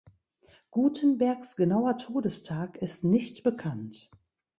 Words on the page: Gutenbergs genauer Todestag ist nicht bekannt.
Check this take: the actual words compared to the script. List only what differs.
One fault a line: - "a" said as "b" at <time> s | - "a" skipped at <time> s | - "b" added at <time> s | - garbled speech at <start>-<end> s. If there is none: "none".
none